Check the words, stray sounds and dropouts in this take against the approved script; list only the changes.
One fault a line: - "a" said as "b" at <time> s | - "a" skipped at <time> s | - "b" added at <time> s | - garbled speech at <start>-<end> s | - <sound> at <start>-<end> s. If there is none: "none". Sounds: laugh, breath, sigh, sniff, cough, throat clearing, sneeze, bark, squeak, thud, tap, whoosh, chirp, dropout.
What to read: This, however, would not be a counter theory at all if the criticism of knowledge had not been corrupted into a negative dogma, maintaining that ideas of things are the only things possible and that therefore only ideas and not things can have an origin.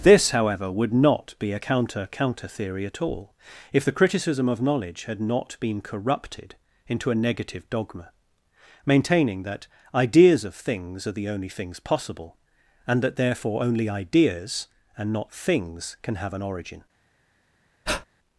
- "counter" added at 2.1 s
- breath at 17.9-18.1 s